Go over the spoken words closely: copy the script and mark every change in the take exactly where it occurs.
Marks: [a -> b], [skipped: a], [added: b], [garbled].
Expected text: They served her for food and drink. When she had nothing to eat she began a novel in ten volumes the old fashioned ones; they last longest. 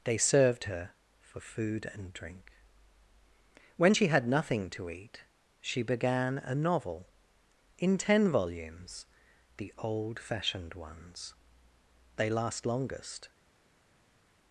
They served her for food and drink. When she had nothing to eat she began a novel in ten volumes the old fashioned ones; they last longest.